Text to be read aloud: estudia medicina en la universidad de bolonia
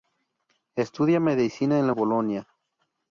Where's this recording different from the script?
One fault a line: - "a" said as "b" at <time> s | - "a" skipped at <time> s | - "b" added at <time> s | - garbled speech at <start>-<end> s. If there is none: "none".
- "universidad de" skipped at 1.9 s